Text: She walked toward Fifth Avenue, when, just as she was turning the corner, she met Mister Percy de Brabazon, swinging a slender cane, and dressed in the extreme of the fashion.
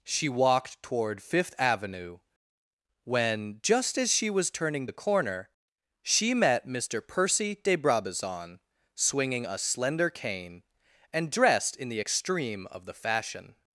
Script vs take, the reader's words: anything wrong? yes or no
no